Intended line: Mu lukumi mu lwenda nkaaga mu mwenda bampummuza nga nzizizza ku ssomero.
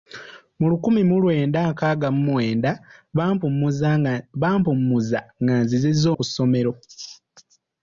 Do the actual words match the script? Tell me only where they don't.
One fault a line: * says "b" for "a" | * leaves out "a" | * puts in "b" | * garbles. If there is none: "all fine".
all fine